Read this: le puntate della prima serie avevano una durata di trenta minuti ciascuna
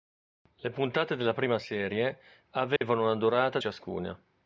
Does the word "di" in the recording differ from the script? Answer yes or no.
yes